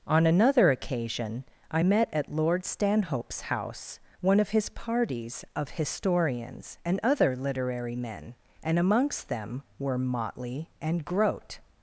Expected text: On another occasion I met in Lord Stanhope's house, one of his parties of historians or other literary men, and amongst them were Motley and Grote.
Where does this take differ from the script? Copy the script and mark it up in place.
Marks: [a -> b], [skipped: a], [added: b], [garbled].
On another occasion I met [in -> at] Lord Stanhope's house, one of his parties of historians [or -> and] other literary men, and amongst them were Motley and Grote.